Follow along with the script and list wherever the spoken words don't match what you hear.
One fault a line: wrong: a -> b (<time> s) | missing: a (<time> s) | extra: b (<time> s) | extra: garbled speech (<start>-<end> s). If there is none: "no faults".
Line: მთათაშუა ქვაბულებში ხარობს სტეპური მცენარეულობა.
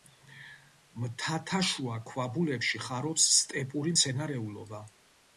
no faults